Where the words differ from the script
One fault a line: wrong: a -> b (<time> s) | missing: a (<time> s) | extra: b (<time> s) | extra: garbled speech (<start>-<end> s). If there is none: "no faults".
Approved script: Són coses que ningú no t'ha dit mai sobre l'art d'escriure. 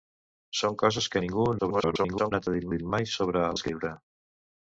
extra: garbled speech (1.6-2.3 s)
extra: dit (2.7 s)
missing: l'art (3.4 s)